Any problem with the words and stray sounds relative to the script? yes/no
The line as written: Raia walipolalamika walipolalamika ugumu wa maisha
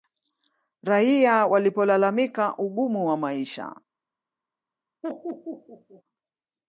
yes